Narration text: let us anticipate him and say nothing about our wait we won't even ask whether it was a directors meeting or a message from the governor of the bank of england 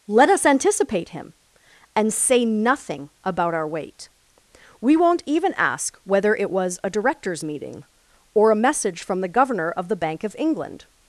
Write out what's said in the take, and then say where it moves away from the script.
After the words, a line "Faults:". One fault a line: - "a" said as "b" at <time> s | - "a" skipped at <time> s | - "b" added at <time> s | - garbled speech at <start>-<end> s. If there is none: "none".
let us anticipate him and say nothing about our wait we won't even ask whether it was a directors meeting or a message from the governor of the bank of england
Faults:
none